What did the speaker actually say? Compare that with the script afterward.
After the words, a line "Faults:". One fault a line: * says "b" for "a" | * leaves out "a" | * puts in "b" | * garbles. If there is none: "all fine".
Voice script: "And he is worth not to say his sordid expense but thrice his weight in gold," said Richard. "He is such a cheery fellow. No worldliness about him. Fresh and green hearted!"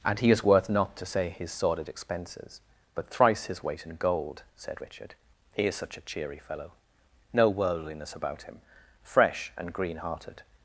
"And he is worth not to say his sordid expenses but thrice his weight in gold," said Richard. "He is such a cheery fellow. No worldliness about him. Fresh and green hearted!"
Faults:
* says "expenses" for "expense"